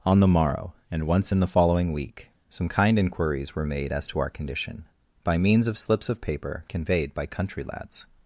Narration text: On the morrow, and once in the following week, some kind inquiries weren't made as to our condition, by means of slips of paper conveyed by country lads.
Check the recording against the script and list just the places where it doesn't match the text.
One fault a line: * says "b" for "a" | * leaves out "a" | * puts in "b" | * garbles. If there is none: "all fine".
* says "were" for "weren't"